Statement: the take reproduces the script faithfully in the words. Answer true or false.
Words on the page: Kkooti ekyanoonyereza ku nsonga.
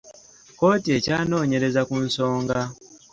true